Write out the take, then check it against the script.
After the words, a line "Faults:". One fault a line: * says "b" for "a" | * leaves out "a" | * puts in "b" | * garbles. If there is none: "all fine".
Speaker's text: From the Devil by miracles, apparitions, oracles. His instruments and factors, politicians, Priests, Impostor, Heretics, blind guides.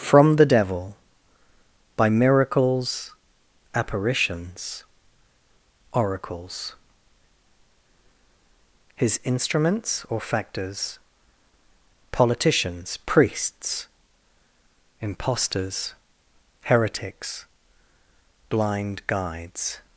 From the Devil by miracles, apparitions, oracles. His instruments or factors, politicians, Priests, Impostors, Heretics, blind guides.
Faults:
* says "or" for "and"
* says "Impostors" for "Impostor"